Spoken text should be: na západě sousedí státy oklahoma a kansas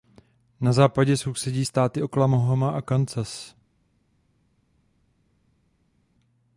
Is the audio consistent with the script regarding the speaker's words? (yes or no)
yes